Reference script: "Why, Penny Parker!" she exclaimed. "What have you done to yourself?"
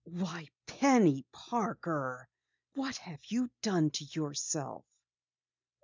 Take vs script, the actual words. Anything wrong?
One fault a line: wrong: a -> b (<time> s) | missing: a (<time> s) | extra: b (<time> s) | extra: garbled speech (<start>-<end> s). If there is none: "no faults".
missing: she exclaimed (2.3 s)